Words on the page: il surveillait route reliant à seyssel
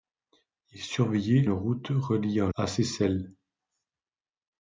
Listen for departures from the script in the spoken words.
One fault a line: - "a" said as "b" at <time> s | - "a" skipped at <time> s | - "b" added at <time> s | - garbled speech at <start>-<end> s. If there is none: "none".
none